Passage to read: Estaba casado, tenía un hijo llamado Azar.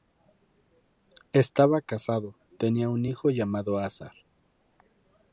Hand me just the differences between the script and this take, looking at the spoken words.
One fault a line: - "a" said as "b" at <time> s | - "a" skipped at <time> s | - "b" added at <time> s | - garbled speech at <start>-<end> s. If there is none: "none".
none